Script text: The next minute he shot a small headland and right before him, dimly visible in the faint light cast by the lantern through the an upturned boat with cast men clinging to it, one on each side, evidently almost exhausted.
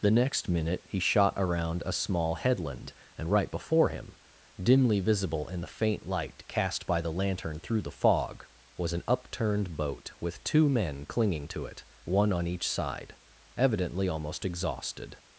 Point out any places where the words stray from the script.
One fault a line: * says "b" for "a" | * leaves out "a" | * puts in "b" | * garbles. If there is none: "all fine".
* puts in "around"
* puts in "fog was"
* says "two" for "cast"